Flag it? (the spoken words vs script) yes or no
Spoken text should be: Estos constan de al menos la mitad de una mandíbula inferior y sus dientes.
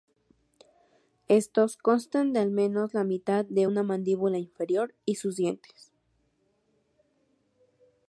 no